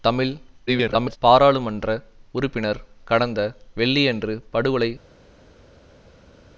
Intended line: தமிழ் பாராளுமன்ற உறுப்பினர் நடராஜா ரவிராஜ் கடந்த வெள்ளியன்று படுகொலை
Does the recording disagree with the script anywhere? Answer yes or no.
yes